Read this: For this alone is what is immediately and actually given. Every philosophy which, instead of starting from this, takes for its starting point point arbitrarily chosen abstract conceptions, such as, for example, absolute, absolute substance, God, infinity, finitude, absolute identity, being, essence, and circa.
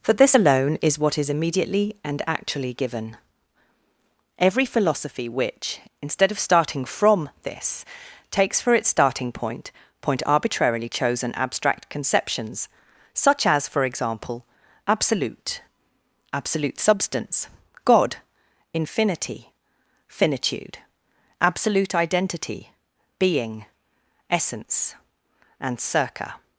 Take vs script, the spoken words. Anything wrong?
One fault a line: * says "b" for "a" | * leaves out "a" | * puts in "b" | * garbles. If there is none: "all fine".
all fine